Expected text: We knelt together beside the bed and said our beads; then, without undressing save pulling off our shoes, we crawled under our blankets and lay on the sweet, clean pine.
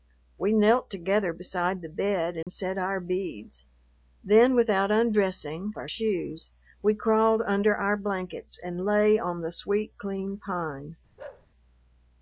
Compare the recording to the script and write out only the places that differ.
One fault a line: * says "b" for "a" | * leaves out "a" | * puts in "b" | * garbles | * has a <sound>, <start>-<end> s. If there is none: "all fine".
* has a dropout, 2.4-2.5 s
* leaves out "save pulling off"
* has a bark, 11.2-11.5 s